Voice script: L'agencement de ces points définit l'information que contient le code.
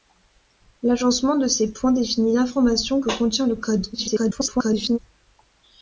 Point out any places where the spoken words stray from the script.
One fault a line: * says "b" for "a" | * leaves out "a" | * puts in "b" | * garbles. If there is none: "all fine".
* garbles